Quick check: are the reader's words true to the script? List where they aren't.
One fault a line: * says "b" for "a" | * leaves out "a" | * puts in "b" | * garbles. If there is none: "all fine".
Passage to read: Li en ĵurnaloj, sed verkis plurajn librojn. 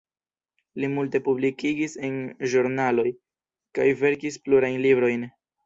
* puts in "multe publikigis"
* says "kaj" for "sed"